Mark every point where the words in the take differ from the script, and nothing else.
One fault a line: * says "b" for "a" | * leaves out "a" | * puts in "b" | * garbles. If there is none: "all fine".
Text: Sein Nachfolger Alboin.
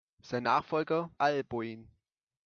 all fine